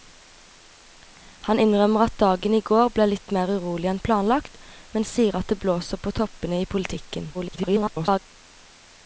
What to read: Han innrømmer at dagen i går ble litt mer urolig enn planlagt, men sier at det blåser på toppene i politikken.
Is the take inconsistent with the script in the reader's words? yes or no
yes